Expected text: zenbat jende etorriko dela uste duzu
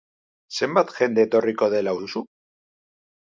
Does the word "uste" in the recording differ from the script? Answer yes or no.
yes